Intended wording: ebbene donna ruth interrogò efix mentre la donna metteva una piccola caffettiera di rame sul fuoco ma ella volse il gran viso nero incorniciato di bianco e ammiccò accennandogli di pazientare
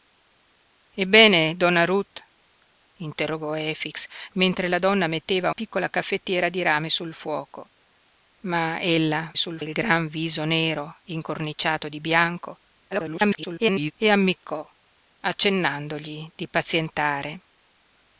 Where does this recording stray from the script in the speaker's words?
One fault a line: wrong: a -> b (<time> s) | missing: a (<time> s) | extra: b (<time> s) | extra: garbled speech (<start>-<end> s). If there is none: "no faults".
missing: una (5.5 s)
wrong: volse -> sul (9.3 s)
extra: garbled speech (12.9-13.9 s)